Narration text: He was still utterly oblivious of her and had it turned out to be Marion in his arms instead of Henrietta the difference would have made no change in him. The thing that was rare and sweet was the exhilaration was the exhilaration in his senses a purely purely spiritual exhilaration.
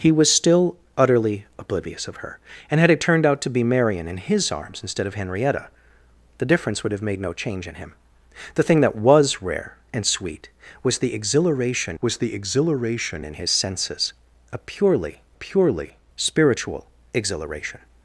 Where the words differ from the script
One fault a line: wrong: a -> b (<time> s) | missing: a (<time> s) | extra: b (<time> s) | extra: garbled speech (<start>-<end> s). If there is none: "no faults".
no faults